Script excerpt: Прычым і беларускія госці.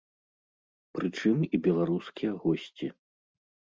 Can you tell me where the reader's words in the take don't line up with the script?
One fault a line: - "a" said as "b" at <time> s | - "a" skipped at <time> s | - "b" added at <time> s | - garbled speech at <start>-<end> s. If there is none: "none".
none